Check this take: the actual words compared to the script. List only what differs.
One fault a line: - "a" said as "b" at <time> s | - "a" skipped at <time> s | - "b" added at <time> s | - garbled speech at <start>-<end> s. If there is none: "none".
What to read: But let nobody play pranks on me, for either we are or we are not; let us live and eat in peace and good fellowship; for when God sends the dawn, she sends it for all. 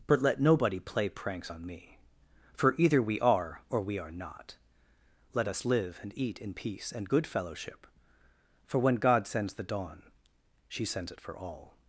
none